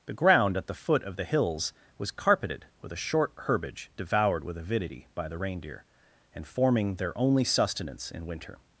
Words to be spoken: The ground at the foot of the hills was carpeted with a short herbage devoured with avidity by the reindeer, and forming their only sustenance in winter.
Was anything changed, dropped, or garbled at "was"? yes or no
no